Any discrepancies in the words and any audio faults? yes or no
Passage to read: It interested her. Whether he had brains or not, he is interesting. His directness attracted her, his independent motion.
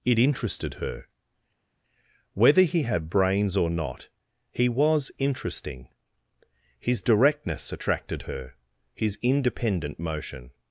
yes